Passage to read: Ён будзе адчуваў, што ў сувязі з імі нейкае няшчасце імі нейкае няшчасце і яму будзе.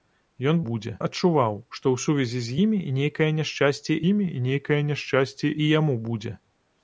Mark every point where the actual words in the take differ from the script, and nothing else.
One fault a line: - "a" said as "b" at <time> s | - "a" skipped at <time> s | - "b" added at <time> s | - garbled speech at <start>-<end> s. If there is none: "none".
none